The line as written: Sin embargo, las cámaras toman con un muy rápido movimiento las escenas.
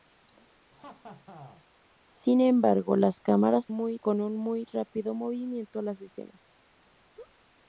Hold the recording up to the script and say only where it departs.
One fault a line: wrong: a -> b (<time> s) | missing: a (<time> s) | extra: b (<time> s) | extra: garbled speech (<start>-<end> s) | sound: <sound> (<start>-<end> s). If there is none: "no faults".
sound: laugh (0.7-1.7 s)
wrong: toman -> muy (3.7 s)
sound: laugh (7.1-7.4 s)